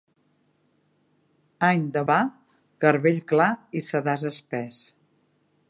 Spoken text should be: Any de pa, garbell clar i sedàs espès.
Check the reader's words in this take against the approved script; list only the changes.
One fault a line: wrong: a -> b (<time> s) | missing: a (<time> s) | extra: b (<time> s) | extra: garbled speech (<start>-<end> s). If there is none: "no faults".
no faults